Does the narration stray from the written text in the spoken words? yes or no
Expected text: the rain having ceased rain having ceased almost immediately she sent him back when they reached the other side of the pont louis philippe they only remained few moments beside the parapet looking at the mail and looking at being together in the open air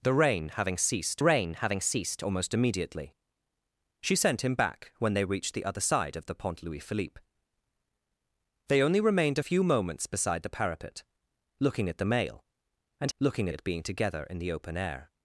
no